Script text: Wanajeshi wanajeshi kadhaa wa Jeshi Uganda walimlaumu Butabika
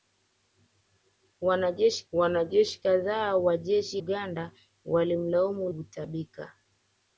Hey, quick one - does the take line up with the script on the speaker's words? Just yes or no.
yes